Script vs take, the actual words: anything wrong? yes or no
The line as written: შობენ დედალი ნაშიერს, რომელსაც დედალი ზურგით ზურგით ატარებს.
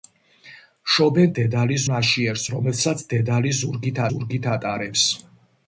no